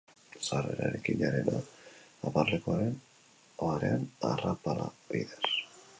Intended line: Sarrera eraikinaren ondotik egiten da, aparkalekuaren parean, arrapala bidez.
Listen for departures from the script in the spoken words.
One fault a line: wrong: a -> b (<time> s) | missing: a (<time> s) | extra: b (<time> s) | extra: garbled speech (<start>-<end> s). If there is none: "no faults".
missing: ondotik egiten (1.5 s)